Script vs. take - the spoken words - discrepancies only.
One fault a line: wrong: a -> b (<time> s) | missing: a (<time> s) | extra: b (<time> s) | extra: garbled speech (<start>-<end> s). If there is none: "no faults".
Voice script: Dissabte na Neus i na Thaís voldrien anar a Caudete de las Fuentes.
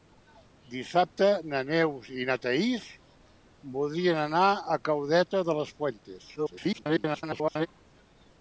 extra: garbled speech (6.4-7.7 s)